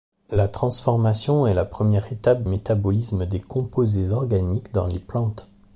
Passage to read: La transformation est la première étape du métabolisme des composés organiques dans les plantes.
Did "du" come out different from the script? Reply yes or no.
yes